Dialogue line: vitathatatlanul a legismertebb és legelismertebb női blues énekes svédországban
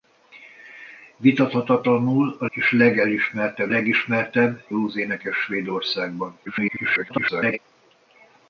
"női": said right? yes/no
no